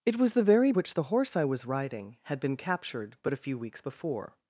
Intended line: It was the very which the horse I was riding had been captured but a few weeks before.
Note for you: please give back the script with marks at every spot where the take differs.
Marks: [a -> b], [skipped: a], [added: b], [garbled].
It was the very which the horse I was riding had been captured but a few weeks before.